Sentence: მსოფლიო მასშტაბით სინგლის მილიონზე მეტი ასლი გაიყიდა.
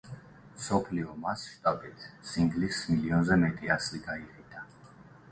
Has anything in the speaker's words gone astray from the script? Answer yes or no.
no